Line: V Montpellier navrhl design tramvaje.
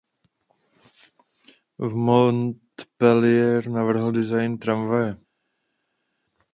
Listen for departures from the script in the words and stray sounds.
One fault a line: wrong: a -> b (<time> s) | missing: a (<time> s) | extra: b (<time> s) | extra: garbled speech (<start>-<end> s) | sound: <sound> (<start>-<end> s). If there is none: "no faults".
no faults